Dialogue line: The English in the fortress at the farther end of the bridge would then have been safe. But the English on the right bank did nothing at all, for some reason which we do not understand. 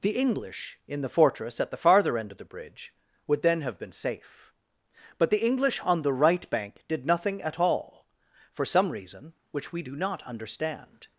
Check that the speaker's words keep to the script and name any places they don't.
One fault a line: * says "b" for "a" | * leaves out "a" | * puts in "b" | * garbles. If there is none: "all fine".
all fine